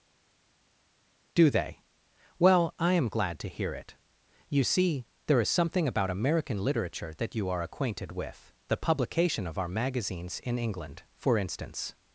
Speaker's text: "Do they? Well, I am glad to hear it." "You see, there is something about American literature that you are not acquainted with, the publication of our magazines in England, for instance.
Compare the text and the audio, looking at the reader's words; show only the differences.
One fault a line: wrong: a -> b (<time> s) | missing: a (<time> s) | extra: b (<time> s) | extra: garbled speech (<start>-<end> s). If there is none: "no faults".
missing: not (7.6 s)